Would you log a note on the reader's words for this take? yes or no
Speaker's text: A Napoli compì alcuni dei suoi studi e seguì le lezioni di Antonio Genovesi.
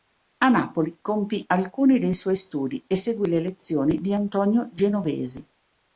no